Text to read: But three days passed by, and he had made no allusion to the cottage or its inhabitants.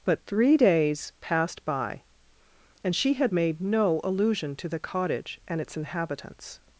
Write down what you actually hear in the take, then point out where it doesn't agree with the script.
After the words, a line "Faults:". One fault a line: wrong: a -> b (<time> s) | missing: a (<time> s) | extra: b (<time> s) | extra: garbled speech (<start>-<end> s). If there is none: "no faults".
But three days passed by, and she had made no allusion to the cottage and its inhabitants.
Faults:
wrong: he -> she (2.9 s)
wrong: or -> and (5.5 s)